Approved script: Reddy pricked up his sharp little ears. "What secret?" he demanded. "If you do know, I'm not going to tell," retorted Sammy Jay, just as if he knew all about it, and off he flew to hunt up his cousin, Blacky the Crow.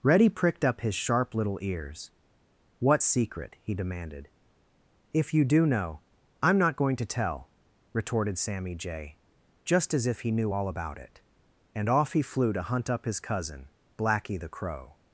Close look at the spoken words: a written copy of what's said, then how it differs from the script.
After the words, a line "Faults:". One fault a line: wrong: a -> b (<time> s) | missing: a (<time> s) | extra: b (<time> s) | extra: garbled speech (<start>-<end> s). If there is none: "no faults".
Reddy pricked up his sharp little ears. "What secret?" he demanded. "If you do know, I'm not going to tell," retorted Sammy Jay, just as if he knew all about it, and off he flew to hunt up his cousin, Blacky the Crow.
Faults:
no faults